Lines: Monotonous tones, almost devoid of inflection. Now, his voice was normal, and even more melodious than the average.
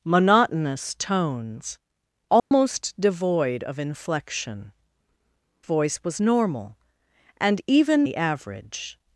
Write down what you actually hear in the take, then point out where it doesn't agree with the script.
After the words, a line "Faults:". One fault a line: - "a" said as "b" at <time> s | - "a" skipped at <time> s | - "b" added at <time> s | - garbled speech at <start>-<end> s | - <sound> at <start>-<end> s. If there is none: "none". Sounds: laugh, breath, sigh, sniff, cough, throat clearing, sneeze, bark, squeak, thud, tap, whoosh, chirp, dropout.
Monotonous tones, almost devoid of inflection. Voice was normal, and even the average.
Faults:
- dropout at 2.4-2.5 s
- "Now his" skipped at 4.7 s
- "more melodious than" skipped at 8.1 s